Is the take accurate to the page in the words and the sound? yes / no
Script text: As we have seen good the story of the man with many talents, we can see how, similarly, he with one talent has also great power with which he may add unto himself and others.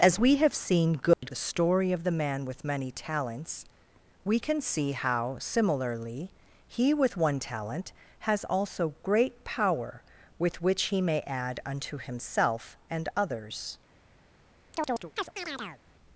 no